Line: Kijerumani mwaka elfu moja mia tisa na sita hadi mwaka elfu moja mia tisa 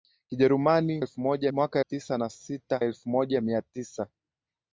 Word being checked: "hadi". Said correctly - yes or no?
no